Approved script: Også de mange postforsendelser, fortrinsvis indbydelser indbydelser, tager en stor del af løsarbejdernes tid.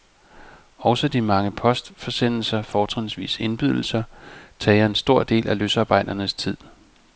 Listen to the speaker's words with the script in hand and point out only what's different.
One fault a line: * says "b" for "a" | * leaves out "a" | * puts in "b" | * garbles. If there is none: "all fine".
* leaves out "indbydelser"